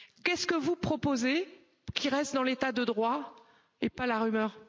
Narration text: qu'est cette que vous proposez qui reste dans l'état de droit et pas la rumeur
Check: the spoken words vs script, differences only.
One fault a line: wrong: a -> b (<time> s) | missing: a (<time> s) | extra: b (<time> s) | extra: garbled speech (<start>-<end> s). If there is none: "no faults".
wrong: cette -> ce (0.3 s)